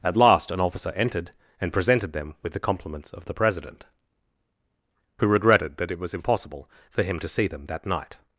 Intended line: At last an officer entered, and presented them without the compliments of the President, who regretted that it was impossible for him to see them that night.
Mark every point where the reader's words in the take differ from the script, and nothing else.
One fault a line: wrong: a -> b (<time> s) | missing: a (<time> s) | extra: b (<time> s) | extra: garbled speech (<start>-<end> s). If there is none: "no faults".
wrong: without -> with (2.4 s)